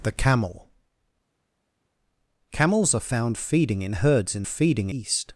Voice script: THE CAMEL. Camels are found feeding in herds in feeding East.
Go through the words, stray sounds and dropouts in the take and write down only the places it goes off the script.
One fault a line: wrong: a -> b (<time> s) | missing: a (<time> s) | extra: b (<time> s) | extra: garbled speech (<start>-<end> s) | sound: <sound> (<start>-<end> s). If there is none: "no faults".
no faults